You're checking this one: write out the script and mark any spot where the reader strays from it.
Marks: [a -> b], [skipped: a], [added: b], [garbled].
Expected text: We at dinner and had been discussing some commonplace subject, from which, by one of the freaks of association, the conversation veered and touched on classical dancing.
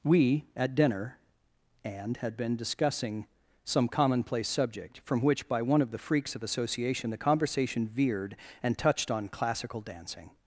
We at dinner and had been discussing some commonplace subject, from which, by one of the freaks of association, the conversation veered and touched on classical dancing.